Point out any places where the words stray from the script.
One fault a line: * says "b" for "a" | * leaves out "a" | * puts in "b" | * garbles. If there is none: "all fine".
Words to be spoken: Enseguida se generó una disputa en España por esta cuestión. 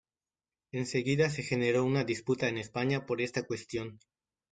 all fine